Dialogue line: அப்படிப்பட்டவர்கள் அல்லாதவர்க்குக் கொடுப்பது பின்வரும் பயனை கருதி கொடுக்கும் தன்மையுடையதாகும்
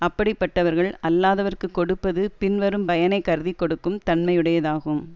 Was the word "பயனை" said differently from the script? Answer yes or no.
no